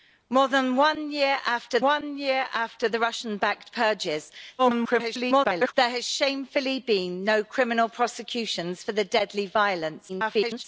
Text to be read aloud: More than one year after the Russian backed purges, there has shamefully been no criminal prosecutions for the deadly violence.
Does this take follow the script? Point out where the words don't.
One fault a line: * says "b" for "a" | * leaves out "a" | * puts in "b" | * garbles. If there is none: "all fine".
* puts in "one year after"
* garbles
* garbles